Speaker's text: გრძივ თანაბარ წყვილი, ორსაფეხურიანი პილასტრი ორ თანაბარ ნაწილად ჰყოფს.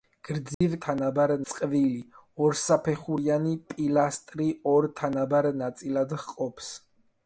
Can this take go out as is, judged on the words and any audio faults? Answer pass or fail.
fail